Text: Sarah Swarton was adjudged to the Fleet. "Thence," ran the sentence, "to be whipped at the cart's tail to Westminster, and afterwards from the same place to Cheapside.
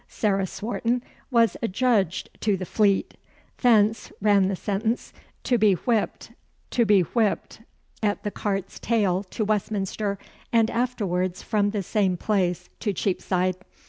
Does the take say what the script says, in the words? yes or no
no